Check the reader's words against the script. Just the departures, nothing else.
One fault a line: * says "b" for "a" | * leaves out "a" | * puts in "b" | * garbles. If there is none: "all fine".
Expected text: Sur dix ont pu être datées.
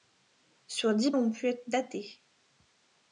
all fine